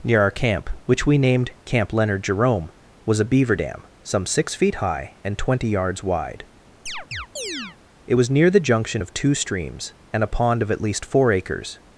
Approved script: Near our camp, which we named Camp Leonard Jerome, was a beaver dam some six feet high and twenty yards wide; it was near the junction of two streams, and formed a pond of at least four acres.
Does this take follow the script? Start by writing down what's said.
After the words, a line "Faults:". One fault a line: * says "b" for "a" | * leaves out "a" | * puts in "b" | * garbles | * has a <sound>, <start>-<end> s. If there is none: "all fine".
Near our camp, which we named Camp Leonard Jerome, was a beaver dam some six feet high and twenty yards wide; it was near the junction of two streams, and a pond of at least four acres.
Faults:
* has a chirp, 6.9-7.8 s
* leaves out "formed"